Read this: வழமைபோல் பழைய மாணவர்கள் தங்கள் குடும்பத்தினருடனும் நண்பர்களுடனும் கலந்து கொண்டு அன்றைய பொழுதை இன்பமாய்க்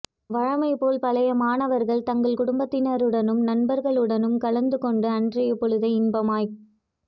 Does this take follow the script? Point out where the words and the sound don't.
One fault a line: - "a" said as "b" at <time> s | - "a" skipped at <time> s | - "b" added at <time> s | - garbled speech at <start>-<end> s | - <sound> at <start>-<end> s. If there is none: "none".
none